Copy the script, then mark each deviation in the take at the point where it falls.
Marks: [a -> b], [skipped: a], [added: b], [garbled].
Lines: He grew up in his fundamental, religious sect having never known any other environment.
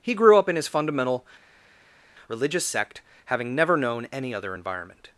He grew up in his fundamental, religious sect having never known any other environment.